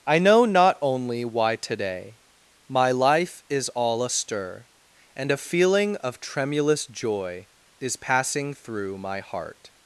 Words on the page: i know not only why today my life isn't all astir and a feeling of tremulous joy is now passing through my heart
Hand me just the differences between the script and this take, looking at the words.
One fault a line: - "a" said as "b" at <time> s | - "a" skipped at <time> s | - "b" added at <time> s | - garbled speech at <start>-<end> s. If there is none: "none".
- "isn't" said as "is" at 3.5 s
- "now" skipped at 8.0 s